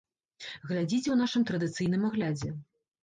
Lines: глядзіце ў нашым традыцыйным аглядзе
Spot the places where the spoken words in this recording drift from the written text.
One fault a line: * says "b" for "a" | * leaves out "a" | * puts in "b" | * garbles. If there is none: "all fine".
all fine